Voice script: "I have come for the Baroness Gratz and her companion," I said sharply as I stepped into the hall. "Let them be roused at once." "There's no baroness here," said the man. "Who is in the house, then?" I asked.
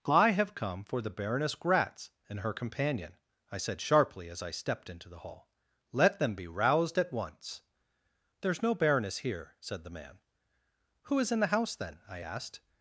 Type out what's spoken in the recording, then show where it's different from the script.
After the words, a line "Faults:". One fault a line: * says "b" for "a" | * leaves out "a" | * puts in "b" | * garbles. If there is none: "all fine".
"I have come for the Baroness Gratz and her companion," I said sharply as I stepped into the hall. "Let them be roused at once." "There's no baroness here," said the man. "Who is in the house, then?" I asked.
Faults:
all fine